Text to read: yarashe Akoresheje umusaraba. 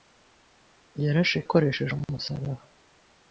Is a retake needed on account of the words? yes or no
no